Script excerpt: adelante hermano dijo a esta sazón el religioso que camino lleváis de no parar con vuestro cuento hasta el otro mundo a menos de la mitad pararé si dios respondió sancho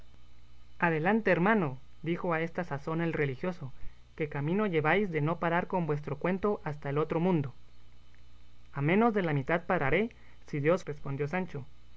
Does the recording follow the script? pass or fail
pass